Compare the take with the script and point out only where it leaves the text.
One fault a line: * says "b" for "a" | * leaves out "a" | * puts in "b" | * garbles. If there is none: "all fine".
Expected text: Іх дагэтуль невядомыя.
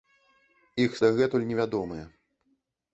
all fine